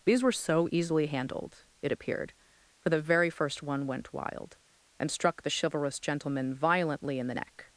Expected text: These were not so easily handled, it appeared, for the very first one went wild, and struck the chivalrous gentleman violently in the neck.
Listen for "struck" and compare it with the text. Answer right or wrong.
right